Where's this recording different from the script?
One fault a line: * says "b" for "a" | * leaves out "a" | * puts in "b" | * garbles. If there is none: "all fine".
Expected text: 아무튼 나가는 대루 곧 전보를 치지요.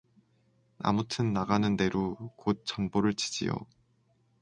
all fine